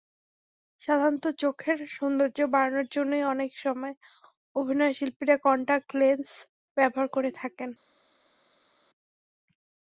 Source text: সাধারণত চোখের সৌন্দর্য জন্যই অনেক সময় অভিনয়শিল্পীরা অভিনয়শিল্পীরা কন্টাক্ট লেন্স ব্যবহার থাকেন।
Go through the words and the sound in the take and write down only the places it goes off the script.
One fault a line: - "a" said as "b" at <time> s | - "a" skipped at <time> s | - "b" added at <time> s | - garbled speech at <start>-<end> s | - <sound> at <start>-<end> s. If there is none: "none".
- "বাড়ানোর" added at 2.5 s
- "অভিনয়শিল্পীরা" skipped at 5.3 s
- "করে" added at 7.1 s